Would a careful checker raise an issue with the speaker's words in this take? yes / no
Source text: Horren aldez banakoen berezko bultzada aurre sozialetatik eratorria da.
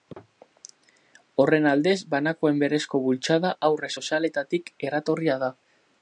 no